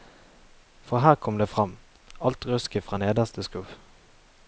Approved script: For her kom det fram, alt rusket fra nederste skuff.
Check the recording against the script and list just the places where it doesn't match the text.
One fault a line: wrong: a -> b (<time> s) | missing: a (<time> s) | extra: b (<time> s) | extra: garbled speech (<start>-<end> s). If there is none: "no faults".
no faults